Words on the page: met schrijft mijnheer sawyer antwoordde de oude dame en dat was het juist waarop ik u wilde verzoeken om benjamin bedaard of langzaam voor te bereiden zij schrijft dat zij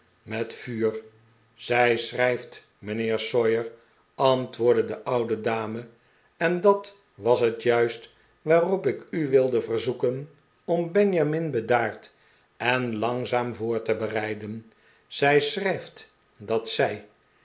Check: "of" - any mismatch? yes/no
yes